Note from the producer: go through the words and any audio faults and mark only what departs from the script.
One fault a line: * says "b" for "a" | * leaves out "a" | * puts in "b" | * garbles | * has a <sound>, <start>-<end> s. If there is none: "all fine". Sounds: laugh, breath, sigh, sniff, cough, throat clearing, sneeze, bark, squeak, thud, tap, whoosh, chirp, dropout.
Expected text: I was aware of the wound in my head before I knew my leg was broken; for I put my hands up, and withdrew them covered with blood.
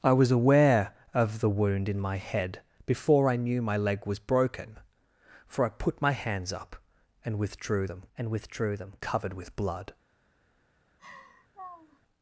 * puts in "and withdrew them"
* has a laugh, 11.0-12.0 s